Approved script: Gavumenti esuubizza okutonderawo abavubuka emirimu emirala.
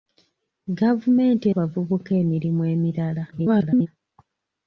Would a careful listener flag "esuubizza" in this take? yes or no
yes